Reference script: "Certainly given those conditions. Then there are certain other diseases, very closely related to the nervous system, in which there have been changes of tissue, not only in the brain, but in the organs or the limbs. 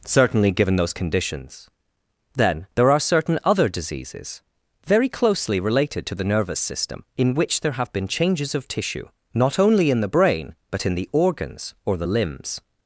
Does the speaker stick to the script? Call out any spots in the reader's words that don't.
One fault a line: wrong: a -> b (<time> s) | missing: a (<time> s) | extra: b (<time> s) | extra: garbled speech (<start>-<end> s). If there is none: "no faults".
no faults